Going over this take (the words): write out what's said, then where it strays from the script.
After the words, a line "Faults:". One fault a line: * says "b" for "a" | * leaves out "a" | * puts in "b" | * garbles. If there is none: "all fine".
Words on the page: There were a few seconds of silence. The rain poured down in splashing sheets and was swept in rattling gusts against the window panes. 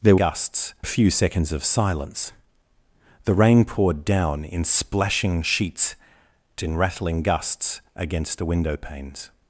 There gusts a few seconds of silence. The rain poured down in splashing sheets in rattling gusts against the window panes.
Faults:
* says "gusts" for "were"
* leaves out "and was swept"